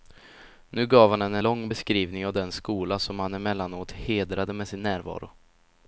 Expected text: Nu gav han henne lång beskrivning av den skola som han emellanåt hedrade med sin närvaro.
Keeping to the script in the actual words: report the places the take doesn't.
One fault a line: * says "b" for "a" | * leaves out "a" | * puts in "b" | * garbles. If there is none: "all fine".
all fine